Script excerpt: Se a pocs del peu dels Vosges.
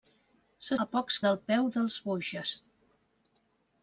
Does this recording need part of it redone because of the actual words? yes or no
no